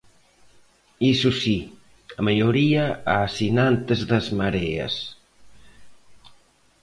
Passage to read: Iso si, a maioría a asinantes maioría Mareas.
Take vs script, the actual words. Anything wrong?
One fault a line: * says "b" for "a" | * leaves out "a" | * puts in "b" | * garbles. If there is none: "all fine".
* says "das" for "maioría"